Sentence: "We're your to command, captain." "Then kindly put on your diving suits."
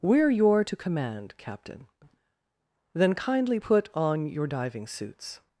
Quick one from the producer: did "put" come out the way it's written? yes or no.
yes